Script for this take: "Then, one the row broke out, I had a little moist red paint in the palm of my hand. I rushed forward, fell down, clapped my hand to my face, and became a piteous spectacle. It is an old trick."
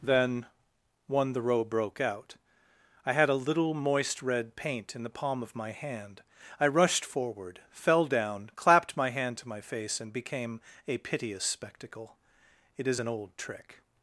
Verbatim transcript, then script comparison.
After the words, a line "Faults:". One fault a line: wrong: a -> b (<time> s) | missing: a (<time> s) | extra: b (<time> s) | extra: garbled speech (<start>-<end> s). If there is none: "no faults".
"Then, one the row broke out, I had a little moist red paint in the palm of my hand. I rushed forward, fell down, clapped my hand to my face, and became a piteous spectacle. It is an old trick."
Faults:
no faults